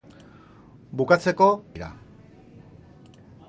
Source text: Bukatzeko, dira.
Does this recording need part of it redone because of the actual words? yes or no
no